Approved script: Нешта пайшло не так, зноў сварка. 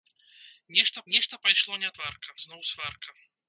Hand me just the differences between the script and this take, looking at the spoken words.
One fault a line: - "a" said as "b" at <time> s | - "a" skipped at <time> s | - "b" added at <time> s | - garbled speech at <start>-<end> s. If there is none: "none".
- "нешта" added at 1.1 s
- "так" said as "сварка" at 2.0 s